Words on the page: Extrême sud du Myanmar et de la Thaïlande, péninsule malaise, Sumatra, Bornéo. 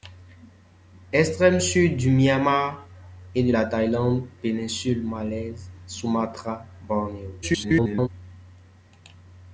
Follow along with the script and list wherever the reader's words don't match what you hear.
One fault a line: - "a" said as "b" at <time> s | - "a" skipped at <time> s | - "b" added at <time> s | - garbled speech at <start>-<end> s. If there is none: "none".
- garbled speech at 7.4-8.1 s